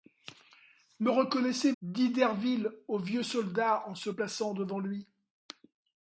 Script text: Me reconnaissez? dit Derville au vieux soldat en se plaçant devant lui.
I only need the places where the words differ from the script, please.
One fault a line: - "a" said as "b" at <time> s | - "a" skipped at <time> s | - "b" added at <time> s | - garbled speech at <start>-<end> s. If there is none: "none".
none